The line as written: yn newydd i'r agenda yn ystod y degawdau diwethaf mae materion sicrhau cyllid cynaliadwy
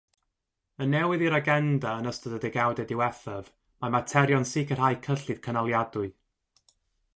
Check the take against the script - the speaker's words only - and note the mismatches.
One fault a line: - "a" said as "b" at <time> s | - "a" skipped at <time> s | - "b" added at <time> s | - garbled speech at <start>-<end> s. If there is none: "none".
none